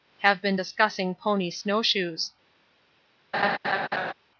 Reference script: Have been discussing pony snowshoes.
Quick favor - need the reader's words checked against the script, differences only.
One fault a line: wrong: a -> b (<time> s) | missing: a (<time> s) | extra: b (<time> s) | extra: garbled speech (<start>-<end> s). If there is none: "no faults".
no faults